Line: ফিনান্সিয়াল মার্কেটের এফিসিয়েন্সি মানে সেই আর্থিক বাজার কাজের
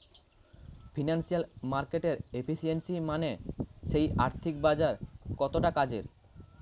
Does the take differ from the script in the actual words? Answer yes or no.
yes